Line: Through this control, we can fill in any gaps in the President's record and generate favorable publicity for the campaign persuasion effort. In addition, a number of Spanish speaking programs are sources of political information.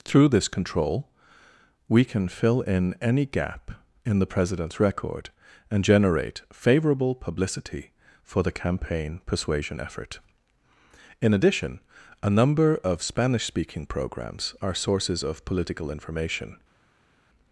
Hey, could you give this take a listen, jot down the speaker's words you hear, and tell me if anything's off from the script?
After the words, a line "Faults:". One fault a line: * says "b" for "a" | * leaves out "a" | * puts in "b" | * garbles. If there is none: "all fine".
Through this control, we can fill in any gap in the President's record and generate favorable publicity for the campaign persuasion effort. In addition, a number of Spanish speaking programs are sources of political information.
Faults:
* says "gap" for "gaps"